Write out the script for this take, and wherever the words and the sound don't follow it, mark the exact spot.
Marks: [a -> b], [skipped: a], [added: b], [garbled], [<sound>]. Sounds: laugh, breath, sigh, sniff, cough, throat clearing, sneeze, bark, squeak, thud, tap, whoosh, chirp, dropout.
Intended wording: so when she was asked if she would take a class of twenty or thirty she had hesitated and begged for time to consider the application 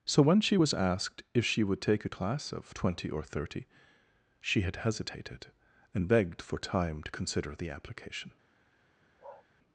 so when she was asked if she would take a class of twenty or thirty she had hesitated and begged for time to consider the application [bark]